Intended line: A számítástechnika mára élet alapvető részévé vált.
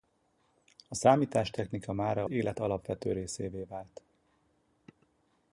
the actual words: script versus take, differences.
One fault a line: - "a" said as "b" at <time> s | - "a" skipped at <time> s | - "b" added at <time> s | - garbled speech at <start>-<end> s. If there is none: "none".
none